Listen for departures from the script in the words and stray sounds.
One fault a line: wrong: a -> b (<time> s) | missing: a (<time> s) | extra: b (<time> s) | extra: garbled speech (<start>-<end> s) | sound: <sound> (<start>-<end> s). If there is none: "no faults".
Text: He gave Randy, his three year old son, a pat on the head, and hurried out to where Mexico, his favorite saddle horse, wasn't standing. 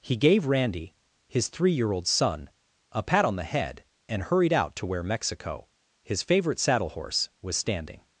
wrong: wasn't -> was (7.4 s)